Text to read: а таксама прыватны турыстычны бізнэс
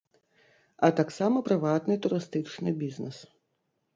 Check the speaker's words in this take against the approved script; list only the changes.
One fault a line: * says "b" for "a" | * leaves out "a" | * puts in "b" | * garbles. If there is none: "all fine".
all fine